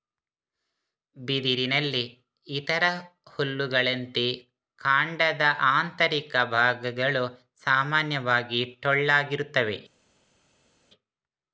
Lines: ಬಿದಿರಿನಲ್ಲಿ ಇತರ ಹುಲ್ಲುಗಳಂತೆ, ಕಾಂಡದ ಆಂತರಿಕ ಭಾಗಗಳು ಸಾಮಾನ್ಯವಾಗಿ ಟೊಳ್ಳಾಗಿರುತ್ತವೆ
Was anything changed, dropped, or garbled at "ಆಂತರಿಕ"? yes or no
no